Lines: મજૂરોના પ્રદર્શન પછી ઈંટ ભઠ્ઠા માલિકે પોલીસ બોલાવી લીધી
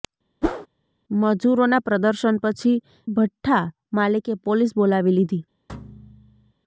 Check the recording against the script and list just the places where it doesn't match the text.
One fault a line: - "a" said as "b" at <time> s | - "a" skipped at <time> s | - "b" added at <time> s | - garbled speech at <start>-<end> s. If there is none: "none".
- "ઈંટ" skipped at 2.8 s